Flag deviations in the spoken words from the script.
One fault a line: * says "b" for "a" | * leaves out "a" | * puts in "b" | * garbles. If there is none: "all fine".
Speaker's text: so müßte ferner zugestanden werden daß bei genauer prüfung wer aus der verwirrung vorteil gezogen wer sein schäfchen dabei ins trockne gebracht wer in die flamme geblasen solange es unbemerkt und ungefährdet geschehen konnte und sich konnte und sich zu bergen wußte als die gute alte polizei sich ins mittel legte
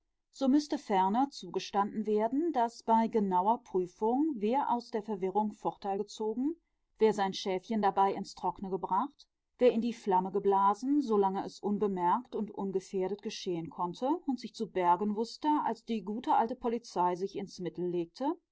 * leaves out "konnte und sich"